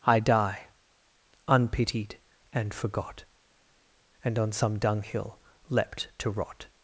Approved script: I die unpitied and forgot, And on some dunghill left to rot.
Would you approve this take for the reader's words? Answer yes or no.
no